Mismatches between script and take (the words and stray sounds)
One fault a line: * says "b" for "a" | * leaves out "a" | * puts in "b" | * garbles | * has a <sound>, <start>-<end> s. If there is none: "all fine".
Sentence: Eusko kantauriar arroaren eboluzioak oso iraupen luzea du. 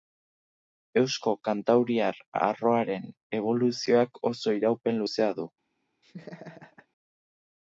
* has a laugh, 6.0-6.9 s